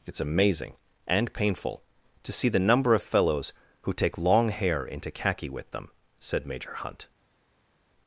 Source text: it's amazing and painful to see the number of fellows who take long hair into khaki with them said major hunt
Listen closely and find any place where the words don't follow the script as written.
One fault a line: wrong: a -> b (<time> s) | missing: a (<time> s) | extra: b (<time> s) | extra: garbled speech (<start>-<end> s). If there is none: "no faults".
no faults